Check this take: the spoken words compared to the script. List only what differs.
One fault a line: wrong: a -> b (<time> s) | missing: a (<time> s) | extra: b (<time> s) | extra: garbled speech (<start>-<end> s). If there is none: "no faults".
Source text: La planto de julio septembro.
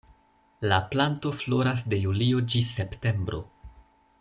extra: floras (1.4 s)
extra: ĝis (2.5 s)